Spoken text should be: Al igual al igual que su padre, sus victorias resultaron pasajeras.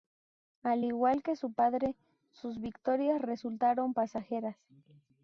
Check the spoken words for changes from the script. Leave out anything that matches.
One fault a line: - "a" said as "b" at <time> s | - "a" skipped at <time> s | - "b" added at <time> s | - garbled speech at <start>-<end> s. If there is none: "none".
- "al igual" skipped at 1.2 s